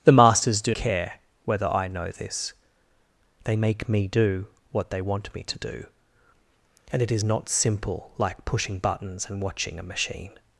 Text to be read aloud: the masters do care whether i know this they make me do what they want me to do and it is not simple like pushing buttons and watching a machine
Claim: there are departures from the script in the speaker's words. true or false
false